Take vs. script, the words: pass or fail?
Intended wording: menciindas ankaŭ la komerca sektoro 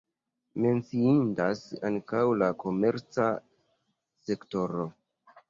pass